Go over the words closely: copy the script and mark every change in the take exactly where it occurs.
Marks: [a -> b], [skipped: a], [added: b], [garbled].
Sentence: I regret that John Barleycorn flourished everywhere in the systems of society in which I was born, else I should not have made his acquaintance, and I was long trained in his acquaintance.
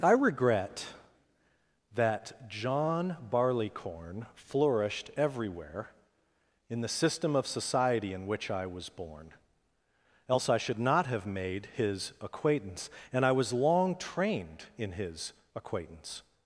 I regret that John Barleycorn flourished everywhere in the [systems -> system] of society in which I was born, else I should not have made his acquaintance, and I was long trained in his acquaintance.